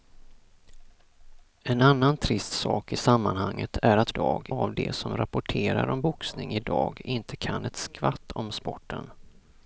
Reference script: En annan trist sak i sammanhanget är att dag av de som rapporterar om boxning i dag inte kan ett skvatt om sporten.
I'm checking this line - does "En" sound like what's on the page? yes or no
yes